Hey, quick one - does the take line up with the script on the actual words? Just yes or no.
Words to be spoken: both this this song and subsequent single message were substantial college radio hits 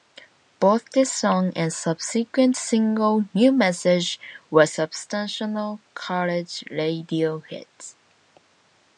no